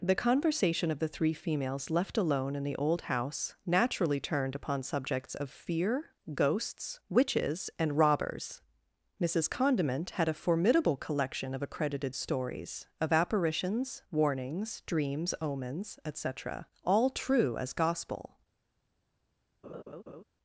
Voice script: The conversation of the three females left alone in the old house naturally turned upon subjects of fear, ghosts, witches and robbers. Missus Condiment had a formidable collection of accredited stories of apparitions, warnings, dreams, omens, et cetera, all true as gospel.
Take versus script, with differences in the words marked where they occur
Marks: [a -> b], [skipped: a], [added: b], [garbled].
The conversation of the three females left alone in the old house naturally turned upon subjects of fear, ghosts, witches and robbers. Missus Condiment had a formidable collection of accredited stories of apparitions, warnings, dreams, omens, et cetera, all true as gospel.